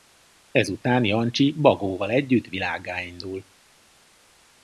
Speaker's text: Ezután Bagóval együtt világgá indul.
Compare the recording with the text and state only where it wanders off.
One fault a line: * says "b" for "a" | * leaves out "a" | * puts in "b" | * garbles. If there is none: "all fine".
* puts in "Jancsi"